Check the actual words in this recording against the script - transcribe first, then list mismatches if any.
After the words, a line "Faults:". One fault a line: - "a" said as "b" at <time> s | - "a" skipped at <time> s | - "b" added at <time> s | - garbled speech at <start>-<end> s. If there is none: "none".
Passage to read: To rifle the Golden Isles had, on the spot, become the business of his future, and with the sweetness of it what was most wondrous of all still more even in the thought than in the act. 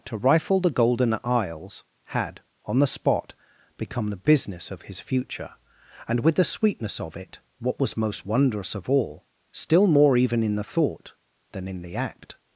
To rifle the Golden Isles had, on the spot, become the business of his future, and with the sweetness of it what was most wondrous of all still more even in the thought than in the act.
Faults:
none